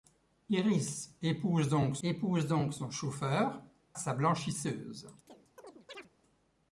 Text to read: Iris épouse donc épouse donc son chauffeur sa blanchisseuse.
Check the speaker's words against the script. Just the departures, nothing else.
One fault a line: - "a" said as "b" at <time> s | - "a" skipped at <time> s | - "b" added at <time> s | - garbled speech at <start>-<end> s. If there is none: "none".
none